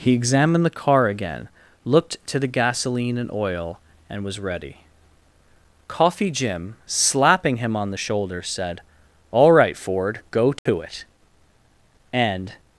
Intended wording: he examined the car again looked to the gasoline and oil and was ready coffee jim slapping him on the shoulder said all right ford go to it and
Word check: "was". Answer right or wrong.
right